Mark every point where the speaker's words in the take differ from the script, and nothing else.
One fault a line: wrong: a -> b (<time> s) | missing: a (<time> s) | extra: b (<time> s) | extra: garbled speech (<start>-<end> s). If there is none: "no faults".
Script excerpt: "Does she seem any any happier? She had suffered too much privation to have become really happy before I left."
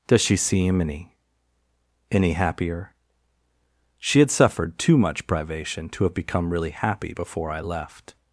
no faults